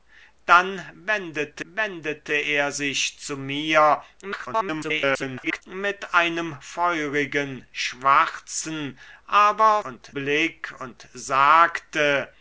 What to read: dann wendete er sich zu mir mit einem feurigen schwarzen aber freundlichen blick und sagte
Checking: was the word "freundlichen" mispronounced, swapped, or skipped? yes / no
yes